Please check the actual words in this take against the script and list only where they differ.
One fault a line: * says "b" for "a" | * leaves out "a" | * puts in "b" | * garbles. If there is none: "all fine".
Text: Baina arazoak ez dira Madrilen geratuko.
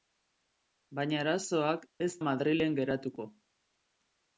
* leaves out "dira"